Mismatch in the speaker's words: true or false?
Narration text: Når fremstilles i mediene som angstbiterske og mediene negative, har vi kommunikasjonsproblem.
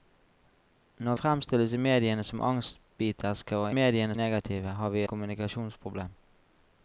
false